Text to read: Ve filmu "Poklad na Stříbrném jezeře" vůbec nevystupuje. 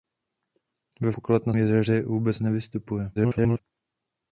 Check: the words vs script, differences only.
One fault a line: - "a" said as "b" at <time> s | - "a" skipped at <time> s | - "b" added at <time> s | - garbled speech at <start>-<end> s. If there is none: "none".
- "filmu" skipped at 1.1 s
- "Stříbrném" skipped at 1.5 s
- garbled speech at 3.2-3.6 s